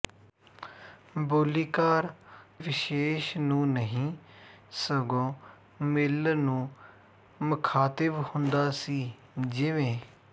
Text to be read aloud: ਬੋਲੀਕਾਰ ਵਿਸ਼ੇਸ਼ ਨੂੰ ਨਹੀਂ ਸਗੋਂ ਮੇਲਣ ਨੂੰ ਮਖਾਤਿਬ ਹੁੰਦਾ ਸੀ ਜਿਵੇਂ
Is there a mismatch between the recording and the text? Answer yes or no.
no